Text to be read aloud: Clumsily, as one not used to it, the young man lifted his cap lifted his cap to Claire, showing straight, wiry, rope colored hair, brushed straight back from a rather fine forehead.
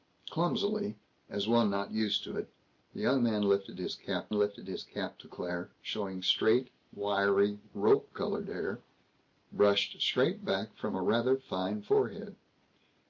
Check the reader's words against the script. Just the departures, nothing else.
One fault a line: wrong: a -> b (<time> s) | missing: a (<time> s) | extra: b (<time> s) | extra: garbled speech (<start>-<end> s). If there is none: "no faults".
no faults